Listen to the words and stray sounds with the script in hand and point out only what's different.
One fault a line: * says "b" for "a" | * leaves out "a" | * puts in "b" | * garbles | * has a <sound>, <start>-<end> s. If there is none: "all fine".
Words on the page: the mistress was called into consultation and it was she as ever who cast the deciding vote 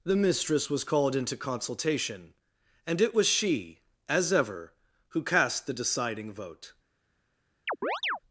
* has a chirp, 7.7-8.2 s